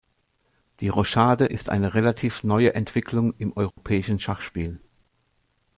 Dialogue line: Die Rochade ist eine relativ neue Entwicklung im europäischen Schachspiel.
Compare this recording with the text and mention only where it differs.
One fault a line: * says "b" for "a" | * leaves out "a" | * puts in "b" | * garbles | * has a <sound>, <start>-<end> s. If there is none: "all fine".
* has a dropout, 3.7-3.8 s